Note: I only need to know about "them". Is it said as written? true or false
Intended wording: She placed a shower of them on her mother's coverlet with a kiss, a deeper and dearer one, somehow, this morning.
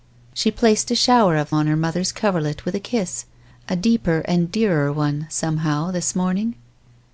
false